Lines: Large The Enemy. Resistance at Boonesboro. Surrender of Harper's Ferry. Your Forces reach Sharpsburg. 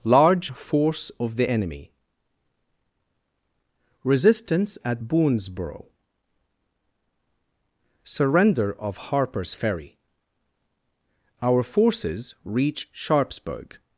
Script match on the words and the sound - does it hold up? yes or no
no